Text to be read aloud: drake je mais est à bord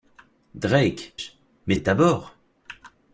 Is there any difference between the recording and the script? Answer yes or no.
no